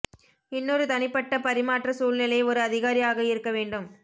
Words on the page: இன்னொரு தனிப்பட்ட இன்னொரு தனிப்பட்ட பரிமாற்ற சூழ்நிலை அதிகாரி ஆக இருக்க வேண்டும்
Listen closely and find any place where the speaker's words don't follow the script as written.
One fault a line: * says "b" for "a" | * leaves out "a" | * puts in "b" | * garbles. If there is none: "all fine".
* leaves out "இன்னொரு தனிப்பட்ட"
* puts in "ஒரு"